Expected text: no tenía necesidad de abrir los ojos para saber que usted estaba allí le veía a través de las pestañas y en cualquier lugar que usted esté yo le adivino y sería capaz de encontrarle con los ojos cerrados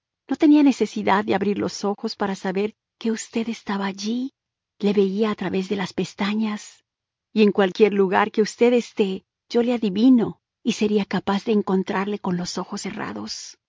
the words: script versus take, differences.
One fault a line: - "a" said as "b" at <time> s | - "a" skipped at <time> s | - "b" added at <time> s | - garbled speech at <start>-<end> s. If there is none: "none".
none